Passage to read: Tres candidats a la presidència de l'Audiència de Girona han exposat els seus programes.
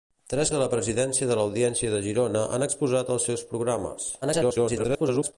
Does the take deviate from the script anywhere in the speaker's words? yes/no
yes